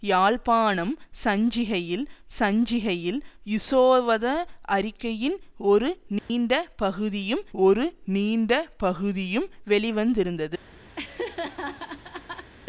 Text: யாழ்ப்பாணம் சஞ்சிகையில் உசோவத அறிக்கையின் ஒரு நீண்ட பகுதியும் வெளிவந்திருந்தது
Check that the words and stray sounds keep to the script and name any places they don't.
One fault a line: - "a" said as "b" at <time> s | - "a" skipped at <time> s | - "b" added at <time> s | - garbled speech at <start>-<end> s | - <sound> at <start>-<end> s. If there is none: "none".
- "சஞ்சிகையில்" added at 2.4 s
- dropout at 6.2-6.3 s
- "ஒரு நீண்ட பகுதியும்" added at 7.6 s
- laugh at 11.0-12.5 s